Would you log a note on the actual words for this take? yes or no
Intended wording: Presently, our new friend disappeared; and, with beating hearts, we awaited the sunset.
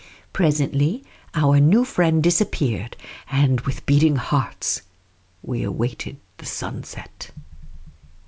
no